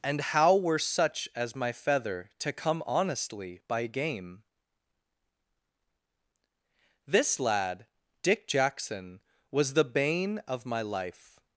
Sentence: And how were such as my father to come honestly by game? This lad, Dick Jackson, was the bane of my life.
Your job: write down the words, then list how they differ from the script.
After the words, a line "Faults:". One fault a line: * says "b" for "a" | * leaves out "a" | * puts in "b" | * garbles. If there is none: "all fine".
And how were such as my feather to come honestly by game? This lad, Dick Jackson, was the bane of my life.
Faults:
* says "feather" for "father"